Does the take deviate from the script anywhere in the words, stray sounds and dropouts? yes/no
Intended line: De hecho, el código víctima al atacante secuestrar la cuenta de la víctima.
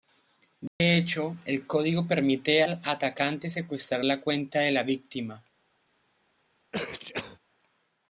yes